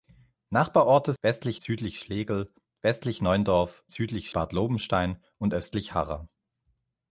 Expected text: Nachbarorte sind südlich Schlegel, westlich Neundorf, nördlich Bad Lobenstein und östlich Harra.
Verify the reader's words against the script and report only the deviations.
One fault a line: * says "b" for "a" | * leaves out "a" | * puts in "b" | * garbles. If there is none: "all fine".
* says "westlich" for "sind"
* says "südlich" for "nördlich"